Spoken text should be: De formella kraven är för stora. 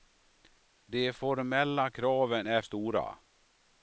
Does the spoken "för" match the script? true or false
false